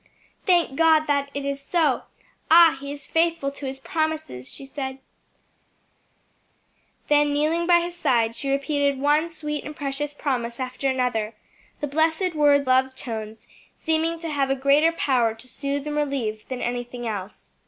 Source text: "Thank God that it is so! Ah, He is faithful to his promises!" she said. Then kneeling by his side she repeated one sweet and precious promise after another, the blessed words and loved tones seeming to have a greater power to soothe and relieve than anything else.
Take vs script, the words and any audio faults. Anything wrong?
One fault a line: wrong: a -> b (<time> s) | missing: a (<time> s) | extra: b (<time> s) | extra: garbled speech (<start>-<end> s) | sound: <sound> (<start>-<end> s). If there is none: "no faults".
missing: and (12.7 s)